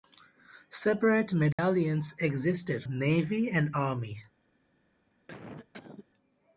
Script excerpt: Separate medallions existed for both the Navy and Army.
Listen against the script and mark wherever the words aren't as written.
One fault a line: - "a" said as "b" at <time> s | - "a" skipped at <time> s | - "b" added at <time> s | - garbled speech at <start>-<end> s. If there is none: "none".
- "for both the" skipped at 2.8 s